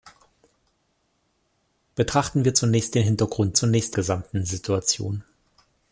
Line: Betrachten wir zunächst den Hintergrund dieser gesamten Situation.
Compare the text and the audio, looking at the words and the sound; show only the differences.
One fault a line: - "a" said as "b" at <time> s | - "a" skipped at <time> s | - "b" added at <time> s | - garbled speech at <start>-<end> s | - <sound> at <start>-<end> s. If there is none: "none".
- "dieser" said as "zunächst" at 3.5 s